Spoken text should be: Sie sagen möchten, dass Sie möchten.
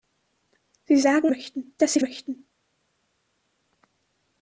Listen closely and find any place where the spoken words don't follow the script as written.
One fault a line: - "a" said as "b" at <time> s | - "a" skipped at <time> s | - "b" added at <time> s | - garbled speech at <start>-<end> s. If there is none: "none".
none